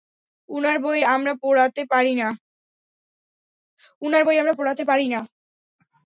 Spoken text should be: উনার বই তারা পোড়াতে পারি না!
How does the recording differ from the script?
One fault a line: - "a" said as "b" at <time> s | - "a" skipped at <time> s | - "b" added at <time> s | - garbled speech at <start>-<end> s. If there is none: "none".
- "তারা" said as "আমরা" at 1.1 s